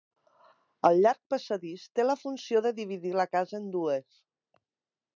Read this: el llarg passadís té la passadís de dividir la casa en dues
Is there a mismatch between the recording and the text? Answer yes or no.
yes